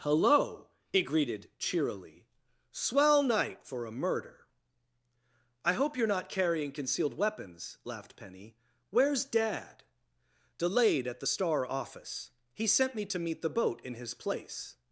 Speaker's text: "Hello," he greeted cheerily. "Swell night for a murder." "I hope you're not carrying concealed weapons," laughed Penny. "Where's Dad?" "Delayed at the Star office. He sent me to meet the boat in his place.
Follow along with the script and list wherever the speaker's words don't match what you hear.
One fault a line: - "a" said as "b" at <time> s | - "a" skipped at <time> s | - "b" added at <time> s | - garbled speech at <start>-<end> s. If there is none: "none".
none